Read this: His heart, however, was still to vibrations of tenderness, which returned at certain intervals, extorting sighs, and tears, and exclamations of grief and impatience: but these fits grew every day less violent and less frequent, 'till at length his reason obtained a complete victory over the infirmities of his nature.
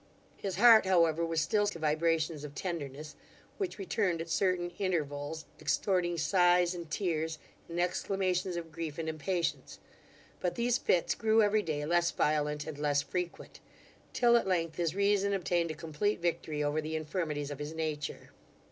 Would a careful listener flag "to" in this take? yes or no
no